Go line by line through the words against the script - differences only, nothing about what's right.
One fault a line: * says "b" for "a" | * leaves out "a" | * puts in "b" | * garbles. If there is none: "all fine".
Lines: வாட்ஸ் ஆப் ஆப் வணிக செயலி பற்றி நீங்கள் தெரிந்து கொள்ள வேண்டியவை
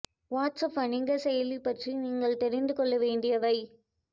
* leaves out "ஆப்"